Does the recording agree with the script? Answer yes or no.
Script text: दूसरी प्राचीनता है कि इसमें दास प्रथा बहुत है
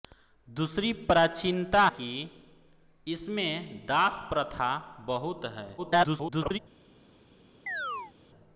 no